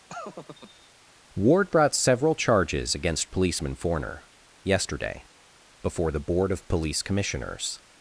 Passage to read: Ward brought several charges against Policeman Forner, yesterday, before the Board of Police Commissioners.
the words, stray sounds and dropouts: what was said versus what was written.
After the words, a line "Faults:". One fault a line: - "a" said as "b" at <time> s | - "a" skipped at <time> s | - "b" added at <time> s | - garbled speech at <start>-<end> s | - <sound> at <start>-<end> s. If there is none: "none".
Ward brought several charges against Policeman Forner, yesterday, before the Board of Police Commissioners.
Faults:
- laugh at 0.1-0.9 s